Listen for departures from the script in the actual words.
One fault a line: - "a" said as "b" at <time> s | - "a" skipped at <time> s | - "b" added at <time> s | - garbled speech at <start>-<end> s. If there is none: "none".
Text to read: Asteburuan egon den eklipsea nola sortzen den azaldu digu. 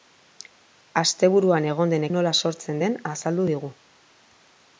- "eklipsea" skipped at 2.1 s